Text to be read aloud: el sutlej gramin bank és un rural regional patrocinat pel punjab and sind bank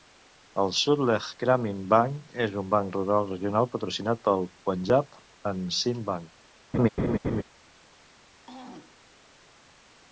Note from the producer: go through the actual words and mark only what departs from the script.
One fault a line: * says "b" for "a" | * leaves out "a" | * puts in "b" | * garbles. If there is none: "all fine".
* puts in "banc"